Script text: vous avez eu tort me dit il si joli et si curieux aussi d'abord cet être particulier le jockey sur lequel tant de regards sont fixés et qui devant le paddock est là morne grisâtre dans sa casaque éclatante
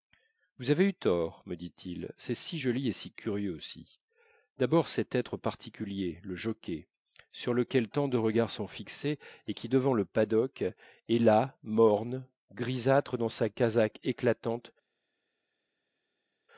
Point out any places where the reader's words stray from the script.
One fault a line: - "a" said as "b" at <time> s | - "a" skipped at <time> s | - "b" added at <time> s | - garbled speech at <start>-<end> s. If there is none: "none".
- "c'est" added at 2.2 s